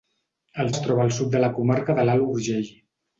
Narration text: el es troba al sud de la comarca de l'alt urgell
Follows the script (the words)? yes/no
yes